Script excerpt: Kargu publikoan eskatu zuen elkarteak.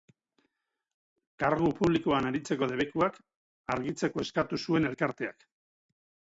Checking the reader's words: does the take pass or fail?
fail